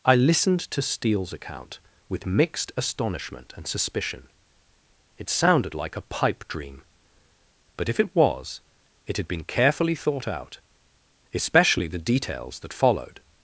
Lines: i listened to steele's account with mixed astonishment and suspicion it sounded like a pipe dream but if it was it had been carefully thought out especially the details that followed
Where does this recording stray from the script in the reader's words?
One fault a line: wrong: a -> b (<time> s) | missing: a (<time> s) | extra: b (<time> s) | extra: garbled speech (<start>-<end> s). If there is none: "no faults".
no faults